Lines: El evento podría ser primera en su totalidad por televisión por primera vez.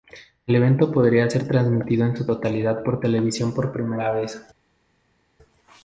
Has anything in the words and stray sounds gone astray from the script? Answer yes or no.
yes